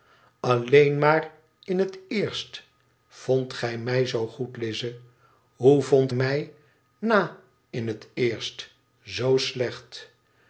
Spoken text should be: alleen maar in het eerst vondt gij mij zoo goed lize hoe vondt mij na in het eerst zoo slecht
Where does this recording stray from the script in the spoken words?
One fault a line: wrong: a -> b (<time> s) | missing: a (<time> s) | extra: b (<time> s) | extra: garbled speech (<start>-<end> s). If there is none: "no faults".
no faults